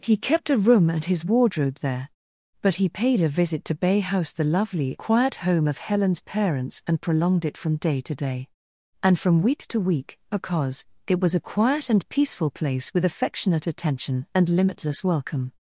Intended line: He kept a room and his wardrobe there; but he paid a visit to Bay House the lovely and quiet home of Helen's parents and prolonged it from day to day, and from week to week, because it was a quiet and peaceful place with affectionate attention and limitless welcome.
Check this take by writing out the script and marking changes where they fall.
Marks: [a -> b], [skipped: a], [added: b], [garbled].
He kept a room and his wardrobe there; but he paid a visit to Bay House the lovely [skipped: and] quiet home of Helen's parents and prolonged it from day to day, and from week to week, because it was a quiet and peaceful place with affectionate attention and limitless welcome.